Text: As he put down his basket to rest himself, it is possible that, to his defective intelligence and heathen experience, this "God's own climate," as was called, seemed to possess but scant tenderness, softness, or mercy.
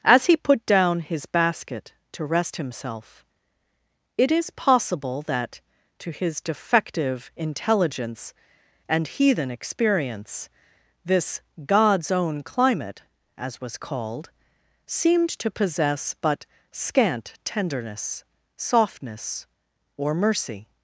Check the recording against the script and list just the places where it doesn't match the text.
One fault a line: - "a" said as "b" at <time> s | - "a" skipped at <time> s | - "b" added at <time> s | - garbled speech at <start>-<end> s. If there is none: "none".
none